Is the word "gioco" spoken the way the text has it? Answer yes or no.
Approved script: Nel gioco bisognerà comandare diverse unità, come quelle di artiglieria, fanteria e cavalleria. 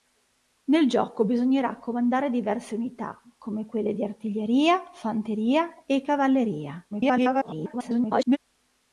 yes